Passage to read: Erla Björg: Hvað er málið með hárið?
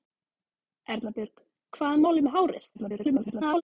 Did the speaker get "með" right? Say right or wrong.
right